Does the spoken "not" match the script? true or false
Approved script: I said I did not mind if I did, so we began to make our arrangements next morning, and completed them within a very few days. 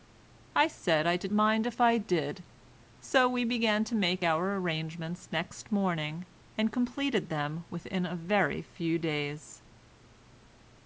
false